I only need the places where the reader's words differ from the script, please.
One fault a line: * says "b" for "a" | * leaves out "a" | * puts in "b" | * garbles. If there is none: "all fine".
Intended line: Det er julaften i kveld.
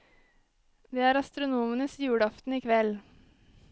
* puts in "astronomenes"